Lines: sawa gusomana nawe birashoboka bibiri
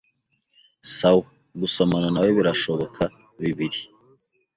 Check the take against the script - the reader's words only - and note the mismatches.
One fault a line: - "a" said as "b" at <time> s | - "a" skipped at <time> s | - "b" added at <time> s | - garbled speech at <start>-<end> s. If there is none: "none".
none